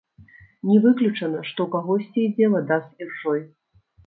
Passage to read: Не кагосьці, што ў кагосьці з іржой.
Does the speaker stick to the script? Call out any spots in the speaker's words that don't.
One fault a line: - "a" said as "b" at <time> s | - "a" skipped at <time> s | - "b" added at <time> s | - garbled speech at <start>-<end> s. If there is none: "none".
- "кагосьці" said as "выключана" at 0.8 s
- "ідзе вада" added at 2.3 s